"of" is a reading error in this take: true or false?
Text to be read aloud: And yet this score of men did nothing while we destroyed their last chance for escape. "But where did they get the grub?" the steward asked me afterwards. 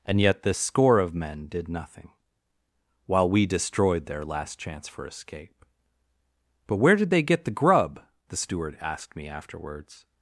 false